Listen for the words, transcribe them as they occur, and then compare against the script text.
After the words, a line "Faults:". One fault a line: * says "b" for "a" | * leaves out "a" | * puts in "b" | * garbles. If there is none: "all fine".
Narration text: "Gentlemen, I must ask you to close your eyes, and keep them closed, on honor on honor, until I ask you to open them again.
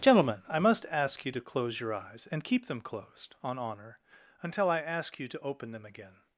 "Gentlemen, I must ask you to close your eyes, and keep them closed, on honor, until I ask you to open them again.
Faults:
* leaves out "on honor"